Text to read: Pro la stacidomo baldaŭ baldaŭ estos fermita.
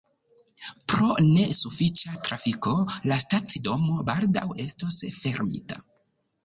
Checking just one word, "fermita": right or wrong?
right